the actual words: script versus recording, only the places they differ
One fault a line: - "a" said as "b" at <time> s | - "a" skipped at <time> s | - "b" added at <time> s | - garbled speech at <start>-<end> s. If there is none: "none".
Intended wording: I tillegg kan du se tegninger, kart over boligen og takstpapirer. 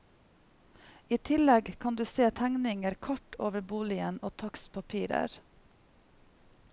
none